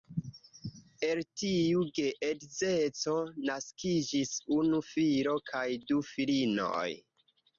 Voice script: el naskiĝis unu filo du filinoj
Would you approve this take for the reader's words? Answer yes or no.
no